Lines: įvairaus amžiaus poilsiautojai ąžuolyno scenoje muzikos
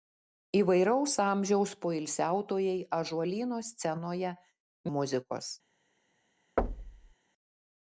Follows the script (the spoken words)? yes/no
yes